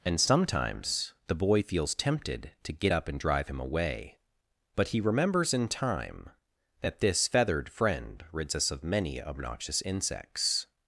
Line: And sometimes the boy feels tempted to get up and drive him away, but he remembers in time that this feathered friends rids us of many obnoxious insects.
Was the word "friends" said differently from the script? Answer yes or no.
yes